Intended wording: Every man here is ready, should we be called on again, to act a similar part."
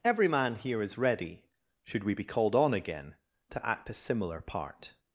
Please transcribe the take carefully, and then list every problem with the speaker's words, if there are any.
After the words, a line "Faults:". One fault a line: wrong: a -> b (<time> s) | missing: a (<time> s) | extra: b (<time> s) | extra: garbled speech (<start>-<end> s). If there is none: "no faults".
Every man here is ready, should we be called on again, to act a similar part."
Faults:
no faults